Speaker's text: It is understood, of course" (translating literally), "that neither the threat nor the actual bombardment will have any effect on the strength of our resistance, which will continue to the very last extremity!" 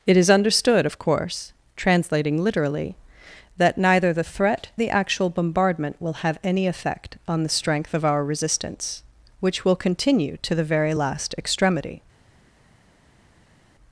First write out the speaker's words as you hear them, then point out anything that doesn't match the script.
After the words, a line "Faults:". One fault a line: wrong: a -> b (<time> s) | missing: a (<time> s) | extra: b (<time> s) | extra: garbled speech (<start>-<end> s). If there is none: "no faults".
It is understood, of course" (translating literally), "that neither the threat the actual bombardment will have any effect on the strength of our resistance, which will continue to the very last extremity!"
Faults:
missing: nor (4.7 s)